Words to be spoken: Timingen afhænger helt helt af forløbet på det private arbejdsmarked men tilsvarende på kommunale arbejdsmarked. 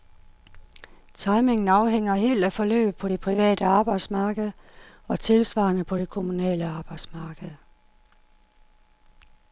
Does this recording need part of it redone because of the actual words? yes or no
yes